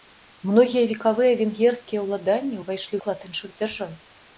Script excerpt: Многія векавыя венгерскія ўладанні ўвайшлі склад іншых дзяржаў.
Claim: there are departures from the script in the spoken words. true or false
false